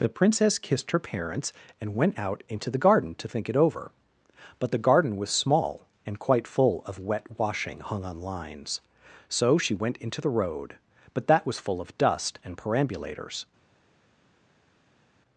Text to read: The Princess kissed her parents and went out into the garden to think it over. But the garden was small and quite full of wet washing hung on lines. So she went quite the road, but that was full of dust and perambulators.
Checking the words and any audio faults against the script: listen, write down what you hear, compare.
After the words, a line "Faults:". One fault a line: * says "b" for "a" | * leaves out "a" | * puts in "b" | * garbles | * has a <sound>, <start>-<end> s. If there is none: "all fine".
The Princess kissed her parents and went out into the garden to think it over. But the garden was small and quite full of wet washing hung on lines. So she went into the road, but that was full of dust and perambulators.
Faults:
* says "into" for "quite"